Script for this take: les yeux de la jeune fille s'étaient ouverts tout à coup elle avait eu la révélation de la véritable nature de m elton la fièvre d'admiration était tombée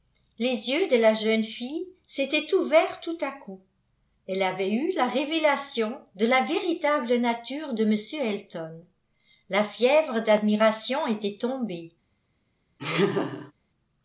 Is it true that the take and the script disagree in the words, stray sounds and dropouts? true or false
true